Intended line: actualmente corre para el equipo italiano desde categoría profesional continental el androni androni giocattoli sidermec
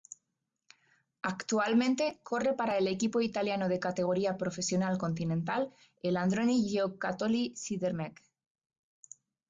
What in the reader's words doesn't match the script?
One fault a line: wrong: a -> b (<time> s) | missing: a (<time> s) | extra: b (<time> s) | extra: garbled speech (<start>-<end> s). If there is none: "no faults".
wrong: desde -> de (3.7 s)
missing: androni (6.7 s)